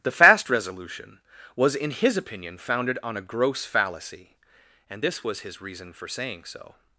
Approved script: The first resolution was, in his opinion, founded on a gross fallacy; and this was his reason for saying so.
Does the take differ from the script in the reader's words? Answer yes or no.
yes